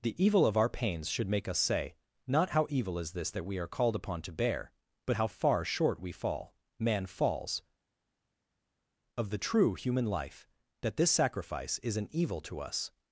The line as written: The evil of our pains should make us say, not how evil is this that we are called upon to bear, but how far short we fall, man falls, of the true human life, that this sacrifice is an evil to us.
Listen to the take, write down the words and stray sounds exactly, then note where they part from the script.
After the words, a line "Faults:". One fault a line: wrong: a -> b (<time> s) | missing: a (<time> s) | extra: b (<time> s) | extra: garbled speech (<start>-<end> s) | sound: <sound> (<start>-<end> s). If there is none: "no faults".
The evil of our pains should make us say, not how evil is this that we are called upon to bear, but how far short we fall, man falls, of the true human life, that this sacrifice is an evil to us.
Faults:
no faults